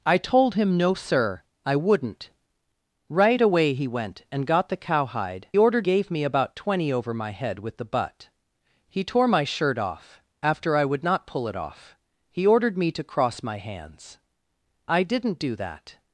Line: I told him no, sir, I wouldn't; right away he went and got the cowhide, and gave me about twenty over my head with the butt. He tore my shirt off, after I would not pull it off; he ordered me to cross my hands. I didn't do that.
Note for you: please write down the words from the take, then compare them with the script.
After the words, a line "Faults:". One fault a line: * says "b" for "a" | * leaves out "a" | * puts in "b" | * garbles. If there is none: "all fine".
I told him no, sir, I wouldn't; right away he went and got the cowhide, ordered gave me about twenty over my head with the butt. He tore my shirt off, after I would not pull it off; he ordered me to cross my hands. I didn't do that.
Faults:
* says "ordered" for "and"